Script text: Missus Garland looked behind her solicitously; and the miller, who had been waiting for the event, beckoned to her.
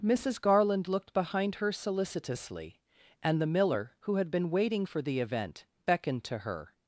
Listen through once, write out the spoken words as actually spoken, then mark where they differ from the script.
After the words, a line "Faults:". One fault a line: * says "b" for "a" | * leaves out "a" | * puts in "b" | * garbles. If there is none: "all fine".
Missus Garland looked behind her solicitously; and the miller, who had been waiting for the event, beckoned to her.
Faults:
all fine